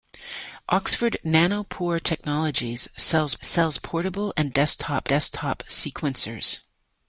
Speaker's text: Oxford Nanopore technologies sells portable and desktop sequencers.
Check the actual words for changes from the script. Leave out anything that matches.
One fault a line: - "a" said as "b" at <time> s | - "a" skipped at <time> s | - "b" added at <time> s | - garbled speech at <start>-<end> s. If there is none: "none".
- "sells" added at 3.4 s
- "desktop" added at 5.0 s